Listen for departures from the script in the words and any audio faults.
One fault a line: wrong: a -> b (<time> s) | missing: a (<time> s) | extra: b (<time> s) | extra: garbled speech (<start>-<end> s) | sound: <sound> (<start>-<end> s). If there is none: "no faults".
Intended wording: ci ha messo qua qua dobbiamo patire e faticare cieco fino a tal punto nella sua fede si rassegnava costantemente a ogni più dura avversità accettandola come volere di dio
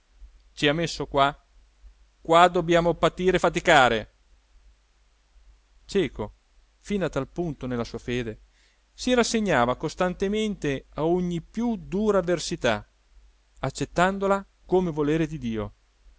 no faults